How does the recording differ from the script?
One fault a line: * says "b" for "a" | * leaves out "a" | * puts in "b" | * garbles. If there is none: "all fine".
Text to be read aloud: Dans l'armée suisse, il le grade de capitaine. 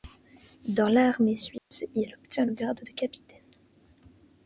* puts in "obtient"